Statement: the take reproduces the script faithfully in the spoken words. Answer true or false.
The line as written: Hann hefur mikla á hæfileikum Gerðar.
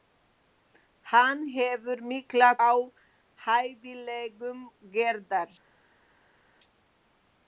true